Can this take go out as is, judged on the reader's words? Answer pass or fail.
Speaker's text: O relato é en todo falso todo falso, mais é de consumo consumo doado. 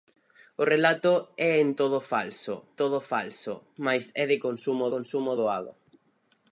pass